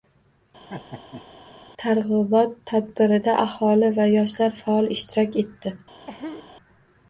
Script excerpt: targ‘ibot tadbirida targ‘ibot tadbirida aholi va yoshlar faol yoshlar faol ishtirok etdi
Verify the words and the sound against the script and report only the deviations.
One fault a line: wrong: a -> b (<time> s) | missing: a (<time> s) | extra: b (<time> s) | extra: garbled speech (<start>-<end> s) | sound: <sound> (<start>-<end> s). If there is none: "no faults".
sound: laugh (0.7-1.3 s)
missing: targ‘ibot tadbirida (3.4 s)
missing: yoshlar faol (4.9 s)
sound: cough (6.1-6.5 s)